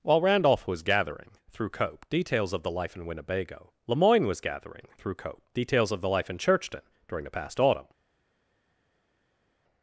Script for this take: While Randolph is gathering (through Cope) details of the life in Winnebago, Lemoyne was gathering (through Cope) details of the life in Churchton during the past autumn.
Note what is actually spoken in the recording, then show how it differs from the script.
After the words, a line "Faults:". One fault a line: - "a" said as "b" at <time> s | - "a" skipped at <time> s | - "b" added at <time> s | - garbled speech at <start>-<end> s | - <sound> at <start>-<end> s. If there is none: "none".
While Randolph was gathering (through Cope) details of the life in Winnebago, Lemoyne was gathering (through Cope) details of the life in Churchton during the past autumn.
Faults:
- "is" said as "was" at 0.7 s